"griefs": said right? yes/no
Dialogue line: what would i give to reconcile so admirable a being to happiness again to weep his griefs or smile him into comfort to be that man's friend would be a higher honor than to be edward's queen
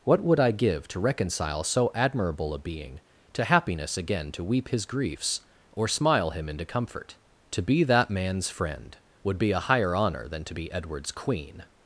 yes